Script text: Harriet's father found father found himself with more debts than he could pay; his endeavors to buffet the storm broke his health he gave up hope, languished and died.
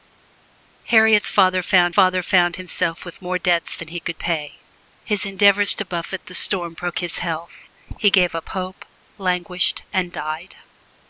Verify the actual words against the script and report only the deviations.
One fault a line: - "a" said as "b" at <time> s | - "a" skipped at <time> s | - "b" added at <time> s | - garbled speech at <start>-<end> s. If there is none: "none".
none